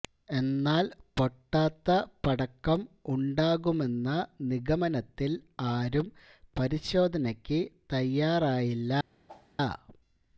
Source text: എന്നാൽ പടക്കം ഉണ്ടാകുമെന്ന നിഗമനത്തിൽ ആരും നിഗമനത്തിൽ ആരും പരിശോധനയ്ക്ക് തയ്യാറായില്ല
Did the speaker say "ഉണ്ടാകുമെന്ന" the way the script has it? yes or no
yes